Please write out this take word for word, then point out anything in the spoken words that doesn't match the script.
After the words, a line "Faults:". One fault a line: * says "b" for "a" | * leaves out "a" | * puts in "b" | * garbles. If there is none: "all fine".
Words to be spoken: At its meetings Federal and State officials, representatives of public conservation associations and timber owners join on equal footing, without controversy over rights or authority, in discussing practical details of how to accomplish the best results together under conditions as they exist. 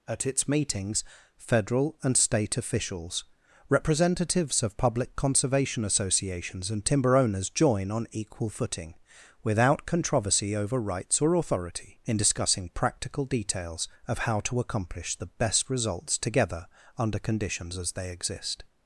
At its meetings Federal and State officials, representatives of public conservation associations and timber owners join on equal footing, without controversy over rights or authority, in discussing practical details of how to accomplish the best results together under conditions as they exist.
Faults:
all fine